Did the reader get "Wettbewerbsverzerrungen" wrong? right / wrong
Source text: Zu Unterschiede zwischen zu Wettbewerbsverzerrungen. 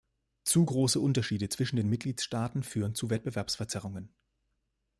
right